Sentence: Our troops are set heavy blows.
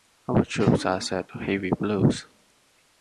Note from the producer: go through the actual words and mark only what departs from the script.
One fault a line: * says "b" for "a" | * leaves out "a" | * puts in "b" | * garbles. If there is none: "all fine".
all fine